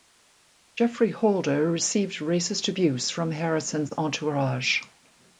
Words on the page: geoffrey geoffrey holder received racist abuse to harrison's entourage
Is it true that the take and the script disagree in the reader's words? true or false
true